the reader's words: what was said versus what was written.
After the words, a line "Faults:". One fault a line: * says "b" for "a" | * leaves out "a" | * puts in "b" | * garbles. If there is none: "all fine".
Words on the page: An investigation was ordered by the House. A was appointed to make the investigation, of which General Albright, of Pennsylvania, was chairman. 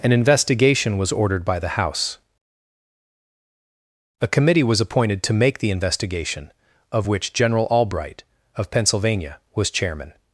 An investigation was ordered by the House. A committee was appointed to make the investigation, of which General Albright, of Pennsylvania, was chairman.
Faults:
* puts in "committee"